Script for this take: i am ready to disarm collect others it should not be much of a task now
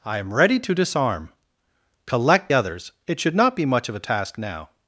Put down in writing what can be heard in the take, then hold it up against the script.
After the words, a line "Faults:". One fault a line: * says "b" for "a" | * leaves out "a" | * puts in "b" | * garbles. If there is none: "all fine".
i am ready to disarm collect others it should not be much of a task now
Faults:
all fine